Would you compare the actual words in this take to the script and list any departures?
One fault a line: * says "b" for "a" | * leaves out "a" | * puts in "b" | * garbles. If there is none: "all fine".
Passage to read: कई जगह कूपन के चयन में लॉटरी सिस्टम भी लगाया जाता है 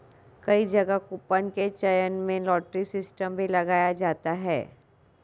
all fine